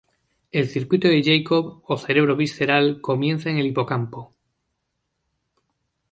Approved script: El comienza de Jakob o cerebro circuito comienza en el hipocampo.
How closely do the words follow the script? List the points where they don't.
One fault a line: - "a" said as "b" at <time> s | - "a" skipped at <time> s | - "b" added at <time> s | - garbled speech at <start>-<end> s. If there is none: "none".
- "comienza" said as "circuito" at 0.7 s
- "circuito" said as "visceral" at 2.4 s